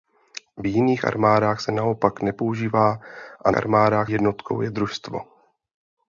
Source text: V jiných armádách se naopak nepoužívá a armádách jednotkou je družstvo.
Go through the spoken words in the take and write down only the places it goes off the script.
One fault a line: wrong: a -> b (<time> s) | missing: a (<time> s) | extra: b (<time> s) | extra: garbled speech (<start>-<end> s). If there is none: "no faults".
no faults